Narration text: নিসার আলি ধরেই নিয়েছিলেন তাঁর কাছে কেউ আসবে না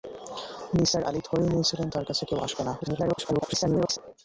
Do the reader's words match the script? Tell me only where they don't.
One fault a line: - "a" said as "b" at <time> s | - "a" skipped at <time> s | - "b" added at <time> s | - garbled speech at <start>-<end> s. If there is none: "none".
- garbled speech at 2.8-4.0 s